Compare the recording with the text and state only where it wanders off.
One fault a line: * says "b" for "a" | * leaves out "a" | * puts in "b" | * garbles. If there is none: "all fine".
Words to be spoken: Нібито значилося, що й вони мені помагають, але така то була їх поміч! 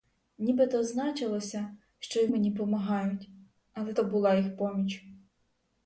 * leaves out "вони"
* leaves out "така"